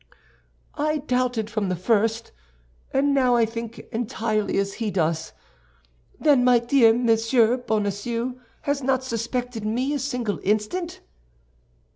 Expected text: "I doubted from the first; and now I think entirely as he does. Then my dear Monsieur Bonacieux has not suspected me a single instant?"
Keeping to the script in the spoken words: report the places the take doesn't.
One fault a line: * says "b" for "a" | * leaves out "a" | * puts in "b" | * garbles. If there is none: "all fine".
all fine